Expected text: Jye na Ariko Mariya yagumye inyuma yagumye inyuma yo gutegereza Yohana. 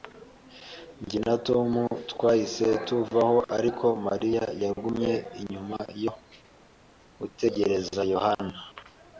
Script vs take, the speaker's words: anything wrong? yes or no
yes